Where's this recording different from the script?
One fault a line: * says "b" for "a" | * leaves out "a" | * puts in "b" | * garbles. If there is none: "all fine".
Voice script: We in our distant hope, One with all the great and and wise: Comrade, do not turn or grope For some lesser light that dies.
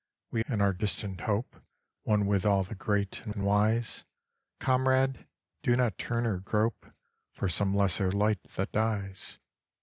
all fine